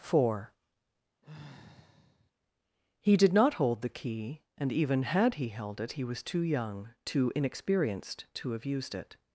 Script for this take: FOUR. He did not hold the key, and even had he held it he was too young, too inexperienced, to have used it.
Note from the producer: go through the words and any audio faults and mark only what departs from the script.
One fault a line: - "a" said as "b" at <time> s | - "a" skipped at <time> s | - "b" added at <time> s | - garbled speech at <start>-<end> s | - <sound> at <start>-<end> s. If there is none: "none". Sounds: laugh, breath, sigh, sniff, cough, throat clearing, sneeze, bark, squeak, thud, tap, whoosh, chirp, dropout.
- sigh at 1.2-2.3 s